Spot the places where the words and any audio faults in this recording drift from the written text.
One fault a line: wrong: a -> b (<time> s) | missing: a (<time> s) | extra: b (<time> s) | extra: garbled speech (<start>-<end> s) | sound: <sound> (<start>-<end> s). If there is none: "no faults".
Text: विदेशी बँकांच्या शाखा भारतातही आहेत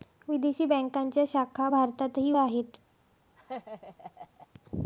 sound: laugh (3.4-4.5 s)